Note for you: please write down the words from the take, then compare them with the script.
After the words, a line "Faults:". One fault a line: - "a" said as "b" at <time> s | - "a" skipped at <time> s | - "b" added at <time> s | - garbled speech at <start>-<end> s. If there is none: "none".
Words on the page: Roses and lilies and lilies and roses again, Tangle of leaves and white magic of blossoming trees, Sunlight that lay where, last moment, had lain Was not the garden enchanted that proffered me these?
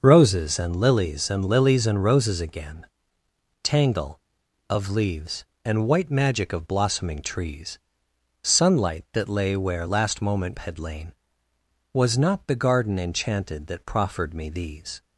Roses and lilies and lilies and roses again, Tangle of leaves and white magic of blossoming trees, Sunlight that lay where, last moment, had lain Was not the garden enchanted that proffered me these?
Faults:
none